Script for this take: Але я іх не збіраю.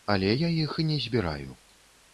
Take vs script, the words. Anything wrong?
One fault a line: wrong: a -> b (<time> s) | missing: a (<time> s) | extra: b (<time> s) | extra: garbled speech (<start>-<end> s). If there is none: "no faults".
no faults